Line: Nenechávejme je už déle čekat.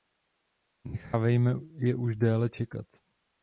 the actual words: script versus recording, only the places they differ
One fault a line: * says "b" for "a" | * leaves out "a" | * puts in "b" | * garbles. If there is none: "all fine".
all fine